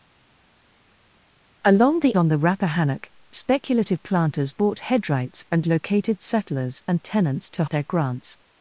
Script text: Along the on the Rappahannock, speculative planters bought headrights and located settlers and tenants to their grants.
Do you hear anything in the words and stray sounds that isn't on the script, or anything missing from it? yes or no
no